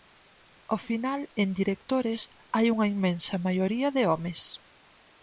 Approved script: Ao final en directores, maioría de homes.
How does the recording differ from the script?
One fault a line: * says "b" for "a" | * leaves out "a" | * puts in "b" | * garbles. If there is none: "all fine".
* puts in "hai unha inmensa"